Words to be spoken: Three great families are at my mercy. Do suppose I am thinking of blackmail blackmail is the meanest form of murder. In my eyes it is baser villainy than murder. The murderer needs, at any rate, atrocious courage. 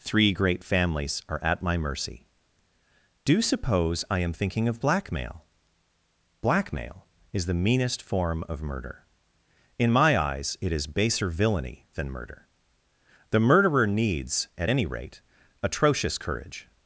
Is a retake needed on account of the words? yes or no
no